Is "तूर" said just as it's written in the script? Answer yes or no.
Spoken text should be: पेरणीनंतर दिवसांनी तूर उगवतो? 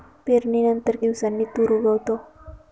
yes